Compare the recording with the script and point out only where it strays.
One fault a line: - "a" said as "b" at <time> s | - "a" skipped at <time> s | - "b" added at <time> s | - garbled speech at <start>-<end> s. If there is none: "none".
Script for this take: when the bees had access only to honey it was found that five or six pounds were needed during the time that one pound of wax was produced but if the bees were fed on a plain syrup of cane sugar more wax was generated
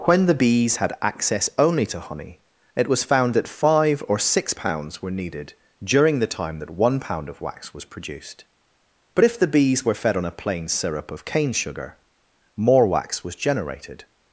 none